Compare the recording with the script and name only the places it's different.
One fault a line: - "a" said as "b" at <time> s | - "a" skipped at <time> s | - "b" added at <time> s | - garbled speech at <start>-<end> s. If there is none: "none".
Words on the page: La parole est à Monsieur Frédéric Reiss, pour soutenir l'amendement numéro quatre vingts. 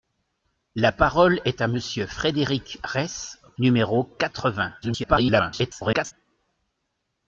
- "pour soutenir l'amendement" skipped at 3.4 s
- garbled speech at 4.8-6.1 s